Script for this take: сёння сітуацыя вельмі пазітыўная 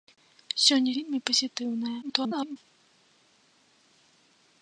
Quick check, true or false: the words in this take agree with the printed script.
false